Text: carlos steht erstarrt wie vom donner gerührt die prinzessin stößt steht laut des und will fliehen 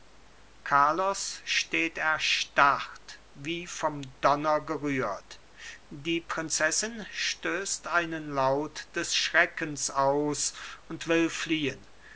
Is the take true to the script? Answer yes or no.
no